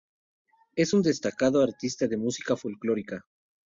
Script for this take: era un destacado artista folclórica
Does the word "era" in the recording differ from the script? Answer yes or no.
yes